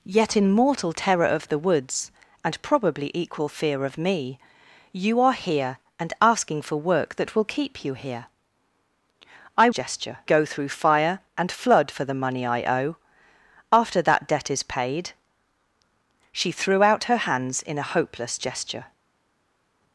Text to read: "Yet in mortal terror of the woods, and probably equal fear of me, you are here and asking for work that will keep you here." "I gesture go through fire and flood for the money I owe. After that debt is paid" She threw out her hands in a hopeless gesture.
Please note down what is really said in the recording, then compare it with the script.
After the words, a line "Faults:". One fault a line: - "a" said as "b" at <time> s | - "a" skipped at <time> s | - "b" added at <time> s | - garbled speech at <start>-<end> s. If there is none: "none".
"Yet in mortal terror of the woods, and probably equal fear of me, you are here and asking for work that will keep you here." "I gesture go through fire and flood for the money I owe. After that debt is paid" She threw out her hands in a hopeless gesture.
Faults:
none